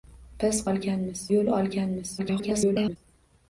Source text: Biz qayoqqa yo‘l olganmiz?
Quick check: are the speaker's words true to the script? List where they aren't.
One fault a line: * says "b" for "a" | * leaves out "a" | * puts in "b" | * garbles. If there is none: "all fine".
* says "olganmiz" for "qayoqqa"
* garbles